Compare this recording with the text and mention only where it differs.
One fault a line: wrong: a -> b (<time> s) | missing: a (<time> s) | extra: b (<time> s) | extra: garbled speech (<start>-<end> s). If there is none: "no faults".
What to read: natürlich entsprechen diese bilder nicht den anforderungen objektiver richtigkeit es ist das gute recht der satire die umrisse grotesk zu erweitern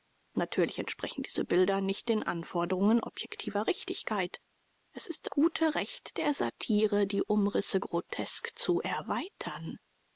missing: das (5.3 s)